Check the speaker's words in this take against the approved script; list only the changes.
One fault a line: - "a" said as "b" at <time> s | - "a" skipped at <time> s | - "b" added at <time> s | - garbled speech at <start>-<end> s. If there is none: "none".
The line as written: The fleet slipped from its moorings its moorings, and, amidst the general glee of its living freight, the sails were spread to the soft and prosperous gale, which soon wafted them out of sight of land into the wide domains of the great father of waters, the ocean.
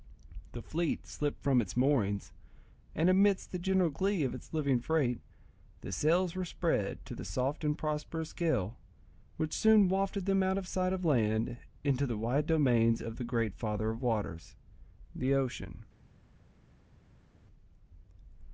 - "its moorings" skipped at 2.3 s